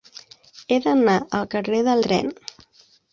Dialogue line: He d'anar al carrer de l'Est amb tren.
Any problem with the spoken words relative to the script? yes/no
yes